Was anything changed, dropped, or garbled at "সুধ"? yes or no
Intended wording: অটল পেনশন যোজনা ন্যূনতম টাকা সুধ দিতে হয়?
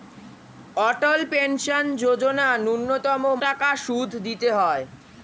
no